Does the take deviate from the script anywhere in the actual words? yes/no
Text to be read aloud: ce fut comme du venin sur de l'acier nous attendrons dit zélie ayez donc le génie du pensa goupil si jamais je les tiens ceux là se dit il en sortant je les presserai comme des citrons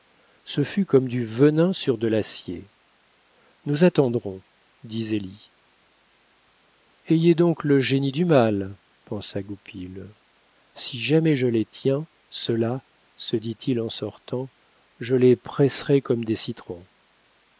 yes